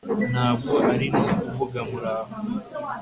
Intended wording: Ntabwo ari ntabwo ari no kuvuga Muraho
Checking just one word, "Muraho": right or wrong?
right